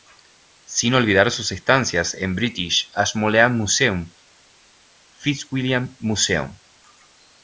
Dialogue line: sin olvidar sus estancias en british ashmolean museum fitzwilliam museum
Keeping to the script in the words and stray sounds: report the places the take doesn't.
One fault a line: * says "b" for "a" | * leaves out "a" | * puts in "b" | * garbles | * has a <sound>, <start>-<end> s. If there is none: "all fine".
all fine